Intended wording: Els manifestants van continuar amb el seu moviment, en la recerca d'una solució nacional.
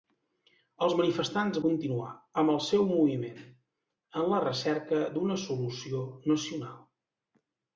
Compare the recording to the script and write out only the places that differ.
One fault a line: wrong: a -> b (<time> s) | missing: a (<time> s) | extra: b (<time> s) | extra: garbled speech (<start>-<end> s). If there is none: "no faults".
missing: van (1.6 s)